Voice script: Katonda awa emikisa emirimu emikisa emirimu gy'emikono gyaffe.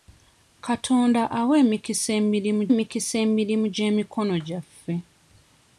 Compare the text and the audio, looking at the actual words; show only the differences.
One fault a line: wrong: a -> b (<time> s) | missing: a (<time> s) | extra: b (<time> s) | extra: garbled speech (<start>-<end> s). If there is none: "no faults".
no faults